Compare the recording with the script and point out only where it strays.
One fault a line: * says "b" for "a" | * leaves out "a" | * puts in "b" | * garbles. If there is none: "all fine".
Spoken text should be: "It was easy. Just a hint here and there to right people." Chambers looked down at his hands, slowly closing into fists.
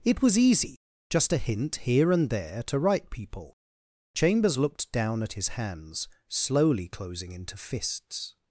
all fine